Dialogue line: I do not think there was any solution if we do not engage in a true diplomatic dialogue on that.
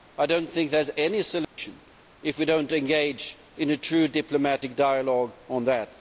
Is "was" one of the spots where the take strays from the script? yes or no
yes